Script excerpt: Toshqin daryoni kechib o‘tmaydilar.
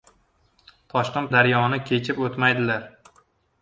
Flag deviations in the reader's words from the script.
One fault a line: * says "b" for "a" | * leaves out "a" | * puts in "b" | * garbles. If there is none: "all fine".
all fine